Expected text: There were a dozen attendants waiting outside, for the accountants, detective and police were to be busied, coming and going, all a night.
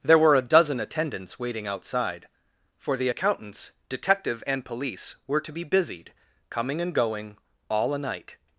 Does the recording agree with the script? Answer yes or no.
yes